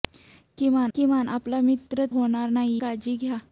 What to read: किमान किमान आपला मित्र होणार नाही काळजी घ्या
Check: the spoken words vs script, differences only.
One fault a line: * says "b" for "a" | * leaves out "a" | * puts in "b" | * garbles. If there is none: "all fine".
all fine